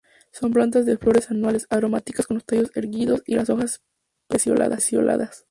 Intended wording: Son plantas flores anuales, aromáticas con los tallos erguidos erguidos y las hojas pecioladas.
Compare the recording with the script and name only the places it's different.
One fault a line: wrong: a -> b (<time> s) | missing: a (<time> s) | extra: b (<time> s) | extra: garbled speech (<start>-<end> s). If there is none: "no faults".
extra: de (0.8 s)
missing: erguidos (3.2 s)